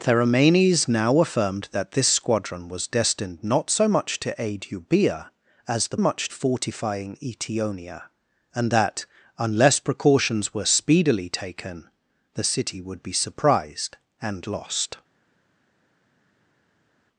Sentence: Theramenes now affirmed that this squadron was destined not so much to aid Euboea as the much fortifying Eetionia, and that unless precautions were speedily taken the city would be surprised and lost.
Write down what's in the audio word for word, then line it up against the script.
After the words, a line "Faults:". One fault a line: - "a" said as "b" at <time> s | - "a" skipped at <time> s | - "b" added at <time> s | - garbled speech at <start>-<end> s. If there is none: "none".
Theramenes now affirmed that this squadron was destined not so much to aid Euboea as the much fortifying Eetionia, and that unless precautions were speedily taken the city would be surprised and lost.
Faults:
none